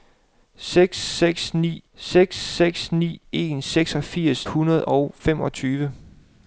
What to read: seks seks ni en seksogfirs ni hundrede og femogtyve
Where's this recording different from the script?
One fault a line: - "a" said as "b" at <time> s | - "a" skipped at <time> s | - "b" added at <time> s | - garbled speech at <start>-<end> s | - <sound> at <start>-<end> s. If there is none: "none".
- "seks seks ni" added at 1.9 s
- "ni" skipped at 4.5 s